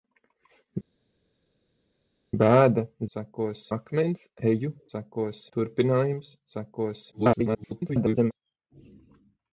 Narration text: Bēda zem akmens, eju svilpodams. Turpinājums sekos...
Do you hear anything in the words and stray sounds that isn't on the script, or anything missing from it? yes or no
yes